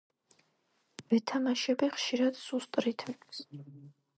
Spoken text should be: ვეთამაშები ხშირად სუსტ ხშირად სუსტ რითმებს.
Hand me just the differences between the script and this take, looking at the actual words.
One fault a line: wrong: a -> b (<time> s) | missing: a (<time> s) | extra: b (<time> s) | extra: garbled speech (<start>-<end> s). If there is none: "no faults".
missing: ხშირად სუსტ (2.8 s)